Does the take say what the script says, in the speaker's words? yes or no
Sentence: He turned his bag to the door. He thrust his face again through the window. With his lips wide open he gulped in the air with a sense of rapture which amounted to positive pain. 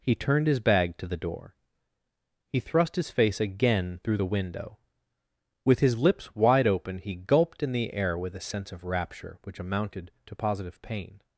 yes